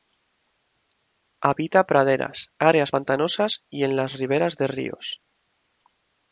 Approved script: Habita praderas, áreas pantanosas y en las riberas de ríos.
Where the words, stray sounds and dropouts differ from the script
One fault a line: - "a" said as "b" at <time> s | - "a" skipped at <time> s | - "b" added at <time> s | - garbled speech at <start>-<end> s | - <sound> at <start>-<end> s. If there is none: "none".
none